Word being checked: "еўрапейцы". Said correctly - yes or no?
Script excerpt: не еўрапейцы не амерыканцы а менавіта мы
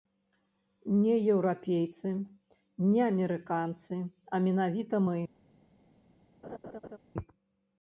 yes